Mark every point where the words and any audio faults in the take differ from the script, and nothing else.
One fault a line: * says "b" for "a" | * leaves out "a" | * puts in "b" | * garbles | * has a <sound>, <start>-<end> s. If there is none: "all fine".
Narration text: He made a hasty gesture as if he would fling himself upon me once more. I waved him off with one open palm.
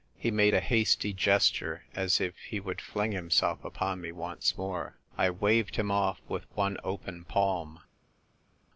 all fine